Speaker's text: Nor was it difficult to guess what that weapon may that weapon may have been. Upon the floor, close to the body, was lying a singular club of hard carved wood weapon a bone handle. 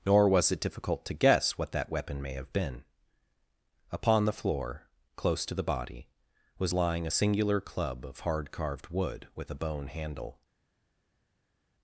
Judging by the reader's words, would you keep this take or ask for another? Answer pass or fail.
fail